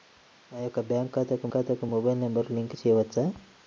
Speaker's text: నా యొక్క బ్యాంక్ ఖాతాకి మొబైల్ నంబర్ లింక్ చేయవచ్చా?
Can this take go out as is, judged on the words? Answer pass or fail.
fail